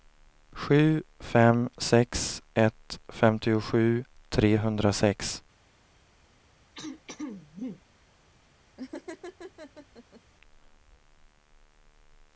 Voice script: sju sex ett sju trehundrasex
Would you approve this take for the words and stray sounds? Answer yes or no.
no